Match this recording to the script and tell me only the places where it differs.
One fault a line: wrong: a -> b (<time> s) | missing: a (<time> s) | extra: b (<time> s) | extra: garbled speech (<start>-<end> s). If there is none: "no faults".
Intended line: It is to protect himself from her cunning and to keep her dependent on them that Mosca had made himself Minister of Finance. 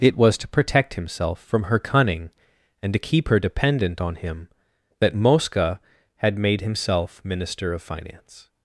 wrong: is -> was (0.2 s)
wrong: them -> him (4.2 s)